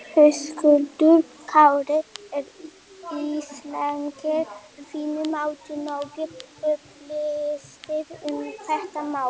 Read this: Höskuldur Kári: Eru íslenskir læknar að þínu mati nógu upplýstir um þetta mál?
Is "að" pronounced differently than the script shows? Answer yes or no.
yes